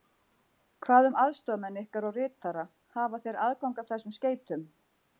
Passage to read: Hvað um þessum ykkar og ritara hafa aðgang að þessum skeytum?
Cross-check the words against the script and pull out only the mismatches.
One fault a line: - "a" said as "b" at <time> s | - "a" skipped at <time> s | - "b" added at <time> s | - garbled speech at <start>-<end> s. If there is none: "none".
- "þessum" said as "aðstoðarmenn" at 1.2 s
- "þeir" added at 3.3 s